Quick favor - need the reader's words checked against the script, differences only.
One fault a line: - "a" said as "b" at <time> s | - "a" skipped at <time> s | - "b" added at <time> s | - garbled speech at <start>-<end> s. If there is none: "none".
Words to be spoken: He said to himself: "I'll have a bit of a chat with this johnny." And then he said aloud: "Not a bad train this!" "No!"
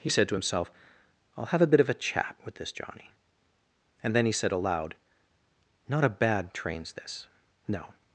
- "train" said as "trains" at 6.5 s